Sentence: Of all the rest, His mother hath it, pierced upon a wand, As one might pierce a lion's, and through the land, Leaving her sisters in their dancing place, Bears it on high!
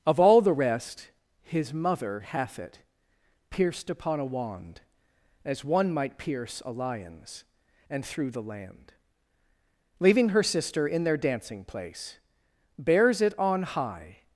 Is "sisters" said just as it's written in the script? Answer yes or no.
no